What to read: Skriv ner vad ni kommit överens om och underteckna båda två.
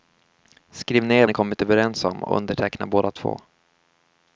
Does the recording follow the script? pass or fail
fail